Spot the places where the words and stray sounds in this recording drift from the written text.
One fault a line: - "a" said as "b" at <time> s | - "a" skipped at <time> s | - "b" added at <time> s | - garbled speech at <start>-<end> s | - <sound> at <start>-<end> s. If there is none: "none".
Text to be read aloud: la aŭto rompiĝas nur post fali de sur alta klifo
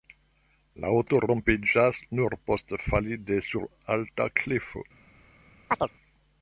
- chirp at 5.7-5.9 s